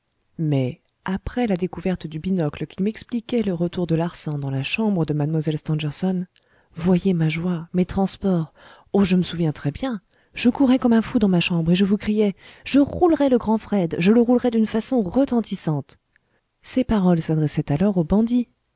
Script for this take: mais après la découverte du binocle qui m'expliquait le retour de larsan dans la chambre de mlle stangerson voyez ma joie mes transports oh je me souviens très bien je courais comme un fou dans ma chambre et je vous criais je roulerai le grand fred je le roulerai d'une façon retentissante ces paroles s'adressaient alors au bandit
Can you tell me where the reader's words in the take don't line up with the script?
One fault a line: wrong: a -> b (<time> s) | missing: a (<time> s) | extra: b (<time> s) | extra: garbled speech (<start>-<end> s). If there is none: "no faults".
no faults